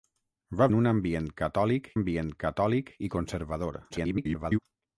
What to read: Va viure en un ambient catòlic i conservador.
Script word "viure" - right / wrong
wrong